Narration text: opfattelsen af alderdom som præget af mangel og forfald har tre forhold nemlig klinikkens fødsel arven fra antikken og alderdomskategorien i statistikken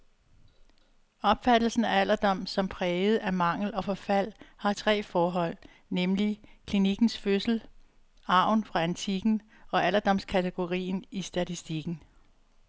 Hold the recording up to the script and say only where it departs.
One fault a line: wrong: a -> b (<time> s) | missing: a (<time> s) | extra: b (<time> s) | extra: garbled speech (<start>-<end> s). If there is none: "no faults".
no faults